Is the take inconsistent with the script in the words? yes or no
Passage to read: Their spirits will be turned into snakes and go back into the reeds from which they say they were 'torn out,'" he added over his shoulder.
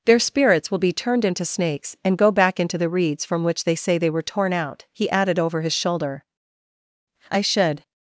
yes